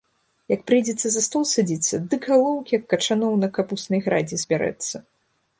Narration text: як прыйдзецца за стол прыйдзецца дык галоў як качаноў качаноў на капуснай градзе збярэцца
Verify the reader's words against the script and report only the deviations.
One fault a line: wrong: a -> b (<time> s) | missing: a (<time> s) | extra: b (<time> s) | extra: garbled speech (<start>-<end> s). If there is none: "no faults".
wrong: прыйдзецца -> садзіцца (1.5 s)
missing: качаноў (3.4 s)